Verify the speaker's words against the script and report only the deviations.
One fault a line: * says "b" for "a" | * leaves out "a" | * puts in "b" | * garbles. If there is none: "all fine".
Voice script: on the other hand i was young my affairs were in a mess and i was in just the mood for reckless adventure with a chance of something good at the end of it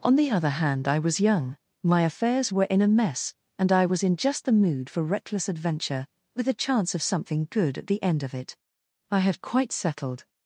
* puts in "i had quite settled"